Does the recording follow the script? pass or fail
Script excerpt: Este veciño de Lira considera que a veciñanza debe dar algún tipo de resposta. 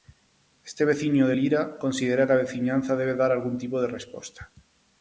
pass